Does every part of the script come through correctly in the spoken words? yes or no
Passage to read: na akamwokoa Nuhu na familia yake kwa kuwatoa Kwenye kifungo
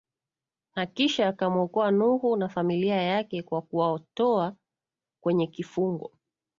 no